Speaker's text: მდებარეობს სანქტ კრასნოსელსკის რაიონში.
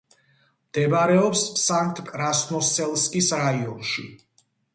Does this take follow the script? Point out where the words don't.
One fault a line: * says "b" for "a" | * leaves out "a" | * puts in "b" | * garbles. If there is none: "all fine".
all fine